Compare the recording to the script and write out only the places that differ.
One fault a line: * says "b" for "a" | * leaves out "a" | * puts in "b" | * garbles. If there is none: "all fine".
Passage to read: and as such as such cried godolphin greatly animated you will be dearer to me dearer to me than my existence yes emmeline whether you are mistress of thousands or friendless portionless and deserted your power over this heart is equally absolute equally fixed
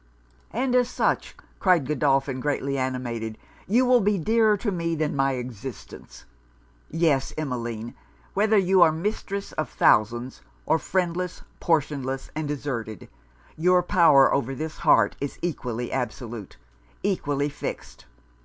* leaves out "as such"
* leaves out "dearer to me"